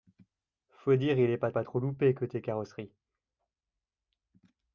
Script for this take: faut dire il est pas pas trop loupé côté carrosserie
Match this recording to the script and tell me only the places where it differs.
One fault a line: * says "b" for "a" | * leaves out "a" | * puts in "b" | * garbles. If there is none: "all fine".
all fine